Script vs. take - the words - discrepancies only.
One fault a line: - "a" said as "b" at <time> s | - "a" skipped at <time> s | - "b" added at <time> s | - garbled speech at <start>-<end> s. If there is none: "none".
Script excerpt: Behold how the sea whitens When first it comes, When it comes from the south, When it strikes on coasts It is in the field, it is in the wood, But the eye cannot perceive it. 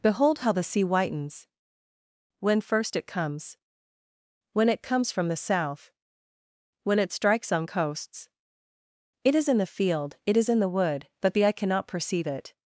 none